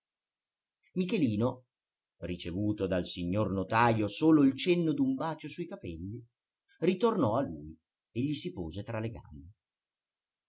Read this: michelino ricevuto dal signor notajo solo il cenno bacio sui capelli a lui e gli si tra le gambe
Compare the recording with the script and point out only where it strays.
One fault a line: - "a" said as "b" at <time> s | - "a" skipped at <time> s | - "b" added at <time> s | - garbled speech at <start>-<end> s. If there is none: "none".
- "d'un" added at 4.9 s
- "ritornò" added at 6.8 s
- "pose" added at 8.5 s